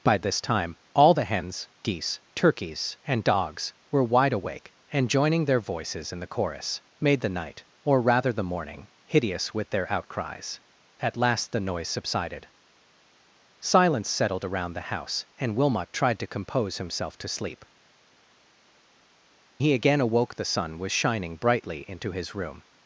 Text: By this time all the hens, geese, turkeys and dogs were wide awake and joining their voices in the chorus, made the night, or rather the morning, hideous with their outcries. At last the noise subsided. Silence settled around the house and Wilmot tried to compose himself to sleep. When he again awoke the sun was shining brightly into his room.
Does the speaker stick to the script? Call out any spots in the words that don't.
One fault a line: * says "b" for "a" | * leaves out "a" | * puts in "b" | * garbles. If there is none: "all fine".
* leaves out "When"